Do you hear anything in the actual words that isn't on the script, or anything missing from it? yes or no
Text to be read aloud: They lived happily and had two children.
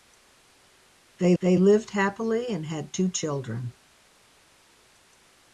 yes